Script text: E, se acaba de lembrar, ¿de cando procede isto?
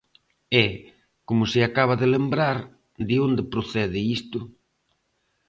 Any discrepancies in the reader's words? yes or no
yes